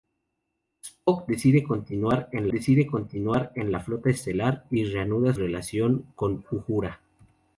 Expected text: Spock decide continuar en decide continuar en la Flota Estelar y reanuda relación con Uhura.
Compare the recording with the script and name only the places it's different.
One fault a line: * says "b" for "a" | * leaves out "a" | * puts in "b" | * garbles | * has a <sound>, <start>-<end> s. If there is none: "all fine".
all fine